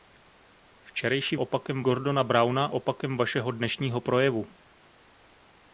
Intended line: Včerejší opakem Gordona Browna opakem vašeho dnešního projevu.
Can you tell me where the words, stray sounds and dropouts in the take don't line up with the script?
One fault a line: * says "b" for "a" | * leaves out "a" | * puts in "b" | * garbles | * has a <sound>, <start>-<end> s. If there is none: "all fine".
all fine